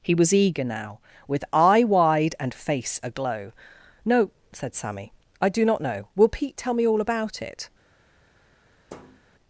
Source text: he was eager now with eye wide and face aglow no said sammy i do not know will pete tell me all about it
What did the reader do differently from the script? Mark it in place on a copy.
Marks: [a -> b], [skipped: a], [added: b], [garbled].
he was eager now with eye wide and face aglow no said sammy i do not know will pete tell me all about it